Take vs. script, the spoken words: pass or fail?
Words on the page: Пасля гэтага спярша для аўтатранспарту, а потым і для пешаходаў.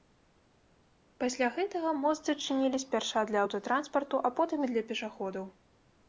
fail